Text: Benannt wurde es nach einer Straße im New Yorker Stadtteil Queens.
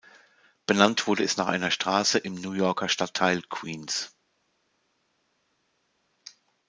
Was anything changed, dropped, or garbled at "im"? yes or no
no